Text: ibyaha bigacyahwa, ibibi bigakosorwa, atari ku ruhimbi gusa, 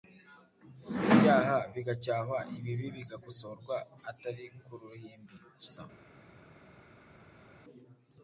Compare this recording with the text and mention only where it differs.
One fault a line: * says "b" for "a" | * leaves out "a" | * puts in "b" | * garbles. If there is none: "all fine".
all fine